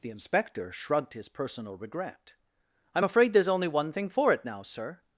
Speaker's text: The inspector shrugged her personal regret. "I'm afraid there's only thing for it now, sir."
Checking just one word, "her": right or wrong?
wrong